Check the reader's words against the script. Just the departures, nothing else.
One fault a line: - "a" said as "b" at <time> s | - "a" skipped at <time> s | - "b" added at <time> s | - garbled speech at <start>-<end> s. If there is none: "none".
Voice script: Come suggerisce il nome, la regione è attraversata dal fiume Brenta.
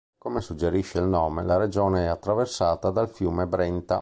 none